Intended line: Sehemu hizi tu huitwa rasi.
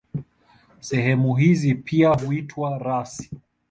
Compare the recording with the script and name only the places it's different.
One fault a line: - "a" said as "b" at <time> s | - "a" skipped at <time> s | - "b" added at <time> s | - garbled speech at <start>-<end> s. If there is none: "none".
- "tu" said as "pia" at 1.8 s